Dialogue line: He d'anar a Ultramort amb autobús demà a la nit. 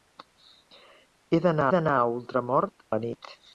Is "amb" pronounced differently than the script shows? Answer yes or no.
yes